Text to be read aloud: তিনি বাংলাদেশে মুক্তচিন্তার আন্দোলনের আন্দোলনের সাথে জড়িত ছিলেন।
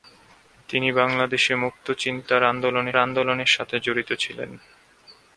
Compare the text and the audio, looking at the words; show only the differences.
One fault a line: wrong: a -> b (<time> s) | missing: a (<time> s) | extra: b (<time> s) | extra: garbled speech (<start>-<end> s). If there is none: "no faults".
no faults